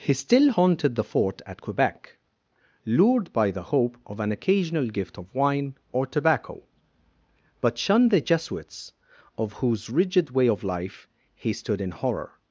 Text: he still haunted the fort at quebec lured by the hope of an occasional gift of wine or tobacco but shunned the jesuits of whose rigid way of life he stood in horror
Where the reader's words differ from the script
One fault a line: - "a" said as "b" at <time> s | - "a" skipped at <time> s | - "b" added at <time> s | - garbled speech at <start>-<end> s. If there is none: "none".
none